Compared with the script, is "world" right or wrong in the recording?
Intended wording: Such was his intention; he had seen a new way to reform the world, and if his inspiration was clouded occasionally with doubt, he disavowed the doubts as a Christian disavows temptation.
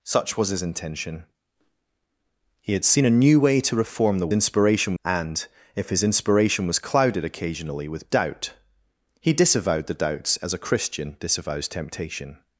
wrong